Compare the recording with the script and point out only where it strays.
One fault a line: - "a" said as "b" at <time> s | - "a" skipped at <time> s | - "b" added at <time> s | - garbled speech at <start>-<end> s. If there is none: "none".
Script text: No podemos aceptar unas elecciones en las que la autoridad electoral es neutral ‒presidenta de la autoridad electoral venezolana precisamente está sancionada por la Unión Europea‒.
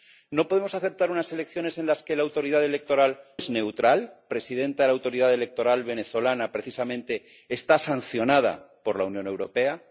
none